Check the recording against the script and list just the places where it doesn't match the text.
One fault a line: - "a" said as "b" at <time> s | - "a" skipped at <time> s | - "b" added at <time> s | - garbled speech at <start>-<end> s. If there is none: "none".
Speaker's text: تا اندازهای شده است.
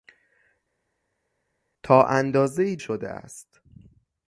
none